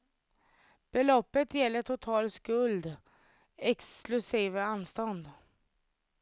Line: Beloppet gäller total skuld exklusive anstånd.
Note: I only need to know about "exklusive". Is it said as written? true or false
true